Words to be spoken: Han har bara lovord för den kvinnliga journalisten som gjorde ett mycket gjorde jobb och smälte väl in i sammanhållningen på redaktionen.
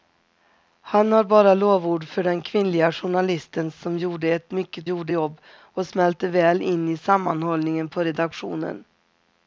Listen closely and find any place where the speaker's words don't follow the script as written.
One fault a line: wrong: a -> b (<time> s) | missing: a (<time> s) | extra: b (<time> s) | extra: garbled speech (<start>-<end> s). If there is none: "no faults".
no faults